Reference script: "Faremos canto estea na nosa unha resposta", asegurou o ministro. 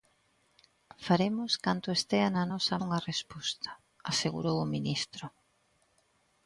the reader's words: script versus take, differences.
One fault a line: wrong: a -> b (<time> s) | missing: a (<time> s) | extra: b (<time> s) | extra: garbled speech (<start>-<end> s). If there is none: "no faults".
no faults